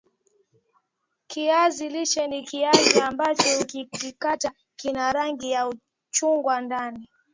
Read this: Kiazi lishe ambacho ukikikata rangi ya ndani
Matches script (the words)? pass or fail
fail